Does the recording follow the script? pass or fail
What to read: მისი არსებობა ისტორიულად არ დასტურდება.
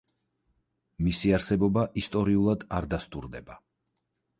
pass